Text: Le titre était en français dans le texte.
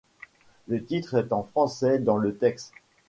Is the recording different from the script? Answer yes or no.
yes